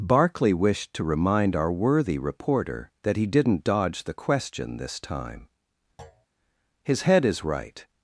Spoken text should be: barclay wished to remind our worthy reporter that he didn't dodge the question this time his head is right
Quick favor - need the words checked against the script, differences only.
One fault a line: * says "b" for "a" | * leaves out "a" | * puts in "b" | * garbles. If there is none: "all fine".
all fine